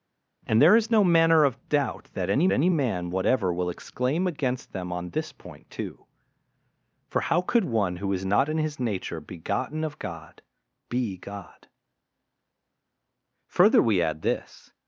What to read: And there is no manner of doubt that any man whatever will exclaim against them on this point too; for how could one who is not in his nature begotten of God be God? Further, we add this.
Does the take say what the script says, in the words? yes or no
no